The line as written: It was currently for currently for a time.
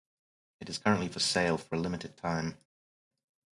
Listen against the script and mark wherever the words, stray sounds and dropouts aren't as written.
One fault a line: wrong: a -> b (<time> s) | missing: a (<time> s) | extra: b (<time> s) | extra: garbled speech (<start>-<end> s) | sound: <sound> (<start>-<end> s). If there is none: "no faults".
wrong: was -> is (0.7 s)
wrong: currently -> sale (1.2 s)
extra: limited (1.8 s)